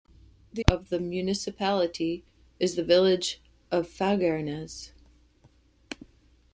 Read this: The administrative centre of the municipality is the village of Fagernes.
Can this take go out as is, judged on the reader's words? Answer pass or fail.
fail